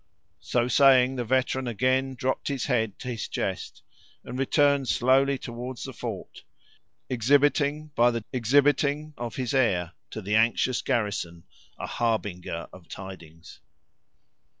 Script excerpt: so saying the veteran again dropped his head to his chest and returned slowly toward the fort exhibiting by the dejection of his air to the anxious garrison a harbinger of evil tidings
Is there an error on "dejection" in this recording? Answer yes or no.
yes